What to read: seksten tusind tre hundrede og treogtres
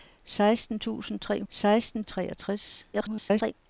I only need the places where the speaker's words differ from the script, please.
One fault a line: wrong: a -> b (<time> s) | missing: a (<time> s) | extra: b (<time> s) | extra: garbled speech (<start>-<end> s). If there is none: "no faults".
wrong: hundrede -> seksten (1.5 s)
extra: garbled speech (2.9-3.5 s)